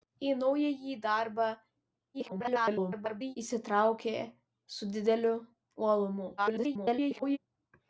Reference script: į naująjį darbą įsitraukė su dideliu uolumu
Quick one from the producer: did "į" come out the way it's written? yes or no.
yes